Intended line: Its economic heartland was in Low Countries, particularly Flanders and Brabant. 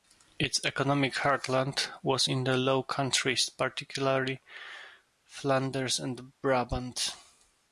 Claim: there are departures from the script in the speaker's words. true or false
true